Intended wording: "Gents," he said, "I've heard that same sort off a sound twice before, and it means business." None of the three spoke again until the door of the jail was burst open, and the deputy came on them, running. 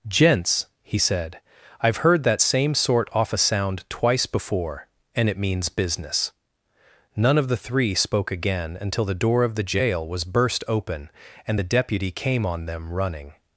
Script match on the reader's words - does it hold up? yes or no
yes